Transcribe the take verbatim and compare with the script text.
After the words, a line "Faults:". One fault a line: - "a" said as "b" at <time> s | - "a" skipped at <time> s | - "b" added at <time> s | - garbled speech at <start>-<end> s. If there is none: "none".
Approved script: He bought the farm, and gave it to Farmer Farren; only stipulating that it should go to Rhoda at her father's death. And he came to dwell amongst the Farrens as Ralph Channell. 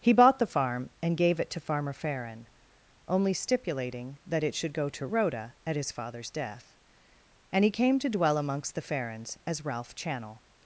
He bought the farm, and gave it to Farmer Farren; only stipulating that it should go to Rhoda at his father's death. And he came to dwell amongst the Farrens as Ralph Channell.
Faults:
- "her" said as "his" at 5.8 s